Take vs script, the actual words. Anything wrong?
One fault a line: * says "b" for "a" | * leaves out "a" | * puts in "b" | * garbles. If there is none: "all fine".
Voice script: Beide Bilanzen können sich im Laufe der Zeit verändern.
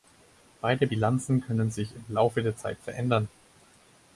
all fine